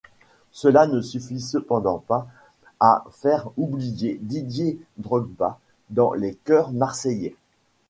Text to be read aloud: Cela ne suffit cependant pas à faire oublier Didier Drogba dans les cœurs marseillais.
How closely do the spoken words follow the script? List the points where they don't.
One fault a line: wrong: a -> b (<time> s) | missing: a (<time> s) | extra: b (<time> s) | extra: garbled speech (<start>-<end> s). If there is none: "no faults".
no faults